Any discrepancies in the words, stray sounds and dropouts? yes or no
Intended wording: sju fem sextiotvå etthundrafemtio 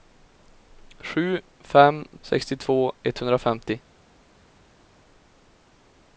no